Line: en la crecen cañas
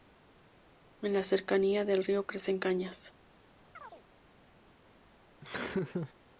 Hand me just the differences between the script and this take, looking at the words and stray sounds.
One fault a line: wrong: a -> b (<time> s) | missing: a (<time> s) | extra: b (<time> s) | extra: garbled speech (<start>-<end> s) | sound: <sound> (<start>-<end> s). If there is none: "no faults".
extra: cercanía del río (1.2 s)
sound: chirp (3.7-4.0 s)
sound: laugh (5.4-6.1 s)